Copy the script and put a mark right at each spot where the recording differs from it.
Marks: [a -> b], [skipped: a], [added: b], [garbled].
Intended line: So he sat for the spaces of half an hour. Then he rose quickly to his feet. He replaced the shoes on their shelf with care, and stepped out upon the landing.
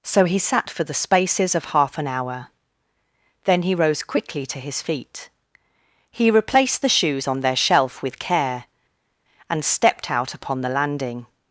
So he sat for the spaces of half an hour. Then he rose quickly to his feet. He replaced the shoes on their shelf with care, and stepped out upon the landing.